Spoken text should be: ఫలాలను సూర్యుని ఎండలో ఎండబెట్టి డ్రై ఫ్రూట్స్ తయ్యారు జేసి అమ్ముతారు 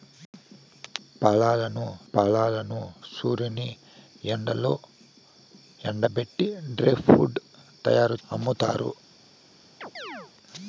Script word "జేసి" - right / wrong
wrong